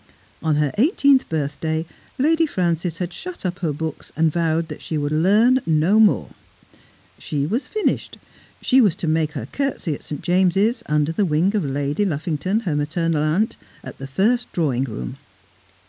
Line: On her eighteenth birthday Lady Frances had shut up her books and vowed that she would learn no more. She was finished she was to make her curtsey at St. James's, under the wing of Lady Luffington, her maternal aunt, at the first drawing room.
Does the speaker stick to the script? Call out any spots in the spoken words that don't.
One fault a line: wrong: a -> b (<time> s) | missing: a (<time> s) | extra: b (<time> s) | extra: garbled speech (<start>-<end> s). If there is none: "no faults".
no faults